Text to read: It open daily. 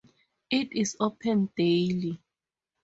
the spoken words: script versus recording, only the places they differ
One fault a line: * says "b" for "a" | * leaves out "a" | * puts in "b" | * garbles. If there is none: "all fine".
* puts in "is"